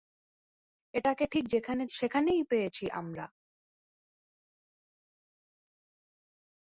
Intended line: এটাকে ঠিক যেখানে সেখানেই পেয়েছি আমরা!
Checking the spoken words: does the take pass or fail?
pass